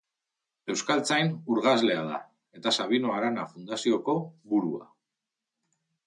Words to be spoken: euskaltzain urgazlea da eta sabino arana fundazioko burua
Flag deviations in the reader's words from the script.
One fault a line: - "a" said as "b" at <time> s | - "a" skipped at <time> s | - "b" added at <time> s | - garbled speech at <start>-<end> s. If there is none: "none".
none